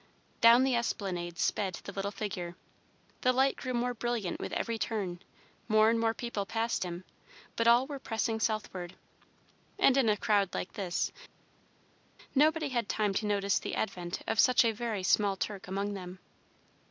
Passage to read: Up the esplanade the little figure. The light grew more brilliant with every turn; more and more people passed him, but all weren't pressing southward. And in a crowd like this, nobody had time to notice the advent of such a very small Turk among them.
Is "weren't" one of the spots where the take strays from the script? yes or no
yes